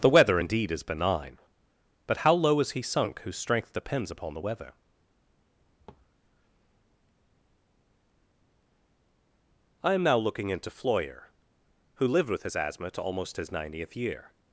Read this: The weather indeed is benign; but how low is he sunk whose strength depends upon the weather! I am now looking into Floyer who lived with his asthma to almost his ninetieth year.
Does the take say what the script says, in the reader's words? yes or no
yes